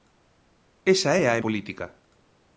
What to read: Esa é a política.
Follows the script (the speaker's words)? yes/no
yes